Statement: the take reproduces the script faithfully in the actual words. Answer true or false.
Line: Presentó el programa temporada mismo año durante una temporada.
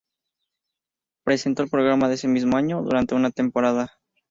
false